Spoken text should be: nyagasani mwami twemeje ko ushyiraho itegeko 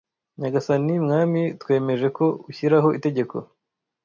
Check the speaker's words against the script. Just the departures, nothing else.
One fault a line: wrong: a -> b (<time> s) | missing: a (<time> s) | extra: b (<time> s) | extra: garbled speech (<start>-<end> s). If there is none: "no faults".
no faults